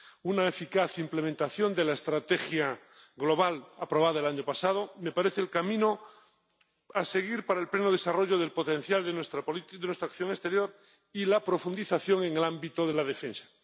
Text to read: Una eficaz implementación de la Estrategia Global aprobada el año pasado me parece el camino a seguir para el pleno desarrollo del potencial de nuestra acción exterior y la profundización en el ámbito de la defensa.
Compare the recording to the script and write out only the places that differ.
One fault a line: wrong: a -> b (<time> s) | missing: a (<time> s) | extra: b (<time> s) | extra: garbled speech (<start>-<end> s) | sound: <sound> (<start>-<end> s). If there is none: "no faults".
no faults